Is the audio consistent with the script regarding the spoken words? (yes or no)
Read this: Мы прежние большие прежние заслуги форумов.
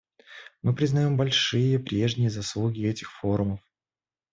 no